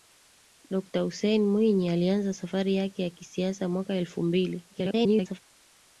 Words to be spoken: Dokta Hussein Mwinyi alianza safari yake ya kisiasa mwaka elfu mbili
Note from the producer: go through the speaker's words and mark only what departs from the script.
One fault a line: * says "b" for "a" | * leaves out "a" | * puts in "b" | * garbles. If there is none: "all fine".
* garbles